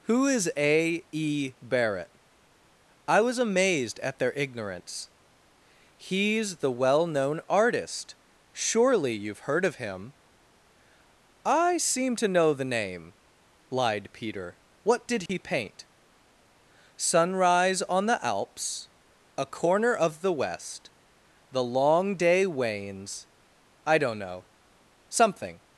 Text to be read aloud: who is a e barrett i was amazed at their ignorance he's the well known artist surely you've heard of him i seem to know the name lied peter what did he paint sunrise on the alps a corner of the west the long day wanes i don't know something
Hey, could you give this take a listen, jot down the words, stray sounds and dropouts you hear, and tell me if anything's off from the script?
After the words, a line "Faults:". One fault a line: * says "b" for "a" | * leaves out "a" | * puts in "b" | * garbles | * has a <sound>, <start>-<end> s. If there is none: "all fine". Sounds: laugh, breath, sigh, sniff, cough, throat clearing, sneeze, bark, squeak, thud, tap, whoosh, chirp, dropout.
who is a e barrett i was amazed at their ignorance he's the well known artist surely you've heard of him i seem to know the name lied peter what did he paint sunrise on the alps a corner of the west the long day wanes i don't know something
Faults:
* has a dropout, 15.3-15.3 s